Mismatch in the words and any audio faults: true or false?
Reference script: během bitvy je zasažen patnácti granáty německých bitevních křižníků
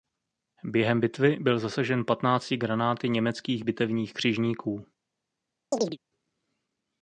true